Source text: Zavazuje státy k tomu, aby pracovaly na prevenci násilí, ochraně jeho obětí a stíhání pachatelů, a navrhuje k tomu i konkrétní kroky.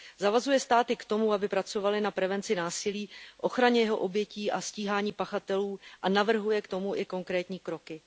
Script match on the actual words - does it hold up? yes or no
yes